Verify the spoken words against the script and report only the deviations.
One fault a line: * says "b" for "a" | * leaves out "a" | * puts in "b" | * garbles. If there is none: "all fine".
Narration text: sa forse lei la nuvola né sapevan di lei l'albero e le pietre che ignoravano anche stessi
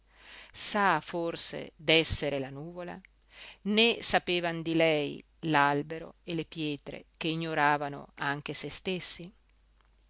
* says "d'essere" for "lei"
* puts in "se"